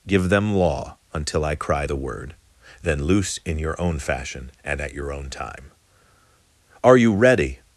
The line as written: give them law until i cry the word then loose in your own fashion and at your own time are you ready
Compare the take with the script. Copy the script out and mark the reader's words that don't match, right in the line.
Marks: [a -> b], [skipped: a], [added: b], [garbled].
give them law until i cry the word then loose in your own fashion and at your own time are you ready